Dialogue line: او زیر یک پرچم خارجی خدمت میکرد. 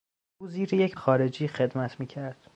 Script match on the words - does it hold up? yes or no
no